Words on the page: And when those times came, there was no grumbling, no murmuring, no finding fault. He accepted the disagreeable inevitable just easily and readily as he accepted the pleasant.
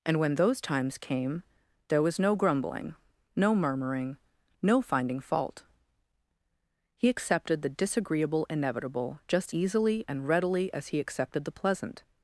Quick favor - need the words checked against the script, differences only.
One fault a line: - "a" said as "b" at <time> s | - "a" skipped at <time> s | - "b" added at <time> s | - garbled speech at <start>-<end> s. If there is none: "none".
none